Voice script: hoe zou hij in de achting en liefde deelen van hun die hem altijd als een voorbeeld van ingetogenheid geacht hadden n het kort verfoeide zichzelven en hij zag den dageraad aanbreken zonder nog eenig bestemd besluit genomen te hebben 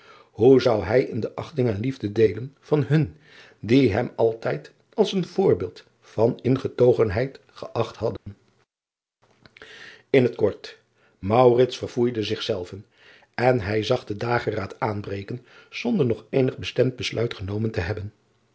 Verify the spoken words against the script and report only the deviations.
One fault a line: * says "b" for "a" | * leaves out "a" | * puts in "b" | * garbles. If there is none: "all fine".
all fine